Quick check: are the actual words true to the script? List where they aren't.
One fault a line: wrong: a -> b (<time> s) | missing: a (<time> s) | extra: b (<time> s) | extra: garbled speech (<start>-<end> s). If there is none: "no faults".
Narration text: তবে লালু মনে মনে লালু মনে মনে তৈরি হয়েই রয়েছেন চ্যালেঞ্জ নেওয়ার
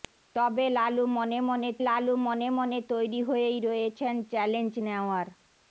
no faults